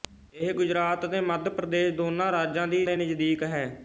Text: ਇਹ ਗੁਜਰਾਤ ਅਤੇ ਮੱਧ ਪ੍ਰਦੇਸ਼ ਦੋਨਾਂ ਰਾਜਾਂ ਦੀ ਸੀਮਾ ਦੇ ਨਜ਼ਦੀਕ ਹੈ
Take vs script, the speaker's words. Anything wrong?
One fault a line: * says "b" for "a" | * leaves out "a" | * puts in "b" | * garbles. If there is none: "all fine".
* leaves out "ਸੀਮਾ"